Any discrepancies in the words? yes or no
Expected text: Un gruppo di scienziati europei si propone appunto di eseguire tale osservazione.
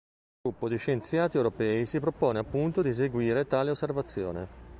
no